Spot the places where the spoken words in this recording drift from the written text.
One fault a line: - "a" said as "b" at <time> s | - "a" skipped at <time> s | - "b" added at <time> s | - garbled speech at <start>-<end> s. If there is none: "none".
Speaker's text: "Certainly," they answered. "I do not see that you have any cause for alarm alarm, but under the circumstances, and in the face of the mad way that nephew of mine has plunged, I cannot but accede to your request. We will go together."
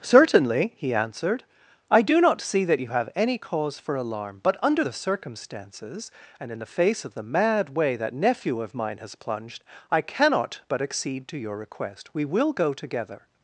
- "they" said as "he" at 0.8 s
- "alarm" skipped at 4.4 s